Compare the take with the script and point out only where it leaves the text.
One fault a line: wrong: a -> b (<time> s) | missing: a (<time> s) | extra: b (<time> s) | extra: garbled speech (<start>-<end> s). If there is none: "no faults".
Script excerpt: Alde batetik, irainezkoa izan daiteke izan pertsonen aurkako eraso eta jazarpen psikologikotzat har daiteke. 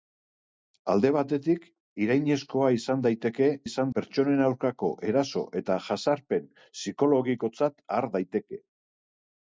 no faults